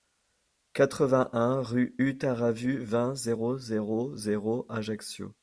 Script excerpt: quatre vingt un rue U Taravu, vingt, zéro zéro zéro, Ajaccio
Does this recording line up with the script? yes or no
yes